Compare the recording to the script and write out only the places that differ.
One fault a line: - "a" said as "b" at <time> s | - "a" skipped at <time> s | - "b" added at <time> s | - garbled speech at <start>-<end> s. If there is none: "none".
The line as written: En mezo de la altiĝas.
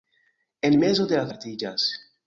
none